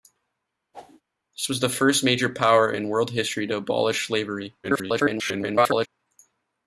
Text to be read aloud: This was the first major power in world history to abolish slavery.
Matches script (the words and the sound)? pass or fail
fail